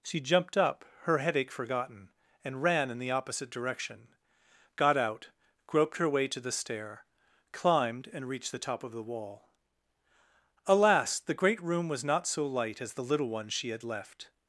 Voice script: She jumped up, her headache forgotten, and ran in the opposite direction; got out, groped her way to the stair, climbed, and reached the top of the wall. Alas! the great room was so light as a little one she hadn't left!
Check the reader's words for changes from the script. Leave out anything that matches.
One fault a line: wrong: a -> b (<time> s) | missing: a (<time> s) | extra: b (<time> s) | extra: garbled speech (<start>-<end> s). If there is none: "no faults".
extra: not (12.1 s)
wrong: a -> the (12.9 s)
wrong: hadn't -> had (13.7 s)